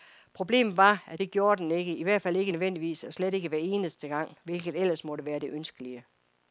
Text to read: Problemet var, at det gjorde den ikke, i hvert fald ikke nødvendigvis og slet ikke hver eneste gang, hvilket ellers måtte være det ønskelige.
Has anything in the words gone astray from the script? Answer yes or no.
no